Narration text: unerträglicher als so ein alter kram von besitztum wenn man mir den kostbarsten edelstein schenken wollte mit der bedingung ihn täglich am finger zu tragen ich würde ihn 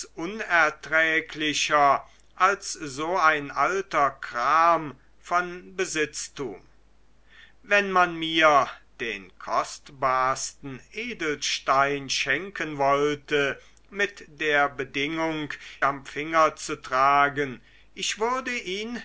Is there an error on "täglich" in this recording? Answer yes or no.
yes